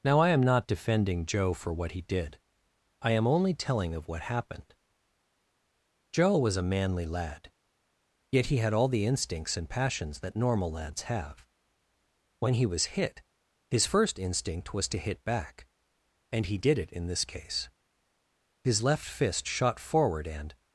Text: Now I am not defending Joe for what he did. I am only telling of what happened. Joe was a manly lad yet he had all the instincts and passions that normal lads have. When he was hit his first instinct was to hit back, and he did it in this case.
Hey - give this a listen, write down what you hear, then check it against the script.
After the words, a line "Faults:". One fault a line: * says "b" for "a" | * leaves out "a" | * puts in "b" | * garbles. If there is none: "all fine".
Now I am not defending Joe for what he did. I am only telling of what happened. Joe was a manly lad yet he had all the instincts and passions that normal lads have. When he was hit his first instinct was to hit back, and he did it in this case. His left fist shot forward and
Faults:
* puts in "His left fist shot forward and"